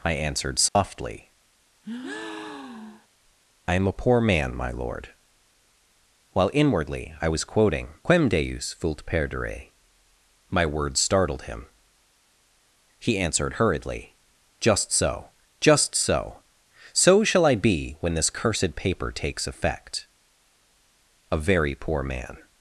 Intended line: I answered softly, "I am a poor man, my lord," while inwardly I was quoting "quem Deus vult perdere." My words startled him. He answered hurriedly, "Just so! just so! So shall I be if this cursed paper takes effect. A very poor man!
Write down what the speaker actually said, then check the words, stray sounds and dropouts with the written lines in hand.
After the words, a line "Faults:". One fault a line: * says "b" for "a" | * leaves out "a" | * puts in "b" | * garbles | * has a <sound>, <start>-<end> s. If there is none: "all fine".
I answered softly, "I am a poor man, my lord," while inwardly I was quoting "quem Deus vult perdere." My words startled him. He answered hurriedly, "Just so! just so! So shall I be when this cursed paper takes effect. A very poor man!
Faults:
* has a dropout, 0.7-0.8 s
* has a breath, 1.8-3.1 s
* says "when" for "if"